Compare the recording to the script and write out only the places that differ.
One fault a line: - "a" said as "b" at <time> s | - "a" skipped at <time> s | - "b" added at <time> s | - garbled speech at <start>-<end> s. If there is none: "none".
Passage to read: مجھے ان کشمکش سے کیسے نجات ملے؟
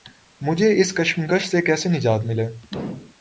- "ان" said as "اس" at 0.8 s